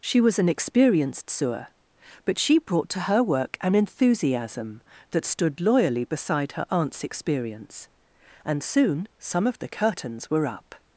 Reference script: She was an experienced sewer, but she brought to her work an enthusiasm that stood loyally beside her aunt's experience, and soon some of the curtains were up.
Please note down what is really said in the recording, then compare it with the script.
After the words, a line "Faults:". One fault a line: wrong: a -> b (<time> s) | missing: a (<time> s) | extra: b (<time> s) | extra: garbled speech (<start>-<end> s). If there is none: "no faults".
She was an experienced sewer, but she brought to her work an enthusiasm that stood loyally beside her aunt's experience, and soon some of the curtains were up.
Faults:
no faults